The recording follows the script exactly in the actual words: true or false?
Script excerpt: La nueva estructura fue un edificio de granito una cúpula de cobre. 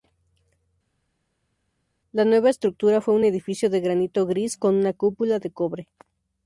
false